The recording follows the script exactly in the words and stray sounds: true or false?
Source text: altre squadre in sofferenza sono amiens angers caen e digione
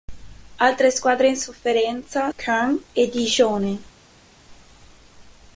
false